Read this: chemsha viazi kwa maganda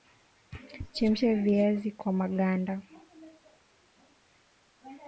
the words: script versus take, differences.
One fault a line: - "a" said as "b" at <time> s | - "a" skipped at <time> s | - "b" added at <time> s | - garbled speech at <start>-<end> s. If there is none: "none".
none